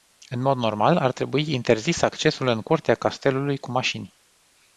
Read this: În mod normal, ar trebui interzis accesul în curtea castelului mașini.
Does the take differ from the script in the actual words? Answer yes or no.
yes